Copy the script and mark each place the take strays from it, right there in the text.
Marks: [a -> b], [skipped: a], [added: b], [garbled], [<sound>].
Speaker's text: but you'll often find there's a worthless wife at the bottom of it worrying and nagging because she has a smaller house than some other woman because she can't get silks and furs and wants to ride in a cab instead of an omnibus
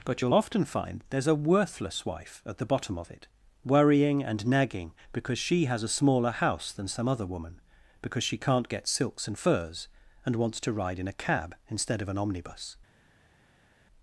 but you'll often find there's a worthless wife at the bottom of it worrying and nagging because she has a smaller house than some other woman because she can't get silks and furs and wants to ride in a cab instead of an omnibus